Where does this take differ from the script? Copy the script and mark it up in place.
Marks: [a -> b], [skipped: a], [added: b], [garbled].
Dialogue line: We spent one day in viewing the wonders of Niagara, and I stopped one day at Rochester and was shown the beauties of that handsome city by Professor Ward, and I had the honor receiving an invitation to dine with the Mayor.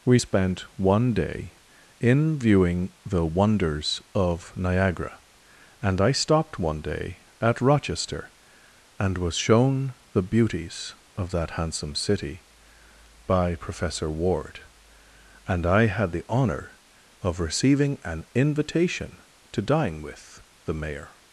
We spent one day in viewing the wonders of Niagara, and I stopped one day at Rochester and was shown the beauties of that handsome city by Professor Ward, and I had the honor [added: of] receiving an invitation to dine with the Mayor.